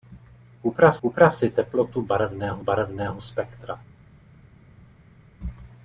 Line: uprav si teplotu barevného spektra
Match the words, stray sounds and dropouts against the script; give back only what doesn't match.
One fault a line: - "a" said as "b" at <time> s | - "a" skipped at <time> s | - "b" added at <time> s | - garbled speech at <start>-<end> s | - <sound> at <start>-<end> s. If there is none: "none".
- "uprav" added at 1.0 s
- "barevného" added at 2.6 s